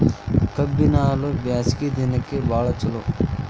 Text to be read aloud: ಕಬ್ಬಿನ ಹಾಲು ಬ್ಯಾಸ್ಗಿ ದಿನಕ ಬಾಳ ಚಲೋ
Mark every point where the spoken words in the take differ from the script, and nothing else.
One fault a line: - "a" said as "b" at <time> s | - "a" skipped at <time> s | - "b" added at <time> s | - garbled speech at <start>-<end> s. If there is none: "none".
none